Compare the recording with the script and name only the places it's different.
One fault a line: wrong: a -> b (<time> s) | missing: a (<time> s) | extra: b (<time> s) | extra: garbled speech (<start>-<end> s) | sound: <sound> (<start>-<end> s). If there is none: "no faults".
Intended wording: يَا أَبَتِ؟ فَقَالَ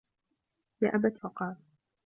no faults